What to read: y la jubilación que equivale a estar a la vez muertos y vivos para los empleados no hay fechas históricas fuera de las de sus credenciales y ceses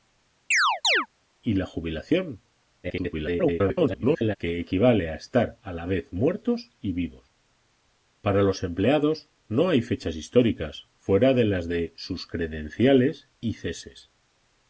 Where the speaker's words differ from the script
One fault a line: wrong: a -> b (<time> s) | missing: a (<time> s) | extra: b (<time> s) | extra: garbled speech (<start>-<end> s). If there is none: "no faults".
extra: garbled speech (2.8-4.4 s)